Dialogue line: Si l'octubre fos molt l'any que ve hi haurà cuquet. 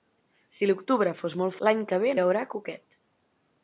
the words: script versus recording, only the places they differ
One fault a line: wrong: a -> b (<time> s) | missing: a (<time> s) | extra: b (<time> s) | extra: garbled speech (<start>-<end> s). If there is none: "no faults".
no faults